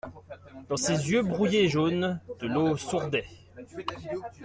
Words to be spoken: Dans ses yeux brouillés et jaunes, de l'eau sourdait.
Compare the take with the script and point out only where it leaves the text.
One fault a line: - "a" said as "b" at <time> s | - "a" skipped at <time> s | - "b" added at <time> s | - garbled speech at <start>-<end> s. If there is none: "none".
none